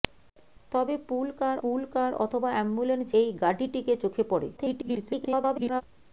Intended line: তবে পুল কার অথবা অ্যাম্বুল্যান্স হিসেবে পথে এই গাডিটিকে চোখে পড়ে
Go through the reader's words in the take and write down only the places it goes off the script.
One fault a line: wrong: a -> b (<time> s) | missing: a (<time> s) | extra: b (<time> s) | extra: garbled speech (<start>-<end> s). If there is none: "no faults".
extra: পুল কার (1.6 s)
missing: হিসেবে পথে (3.1 s)
extra: garbled speech (4.6-5.8 s)